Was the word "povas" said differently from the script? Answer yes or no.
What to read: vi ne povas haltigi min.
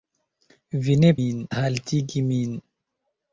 yes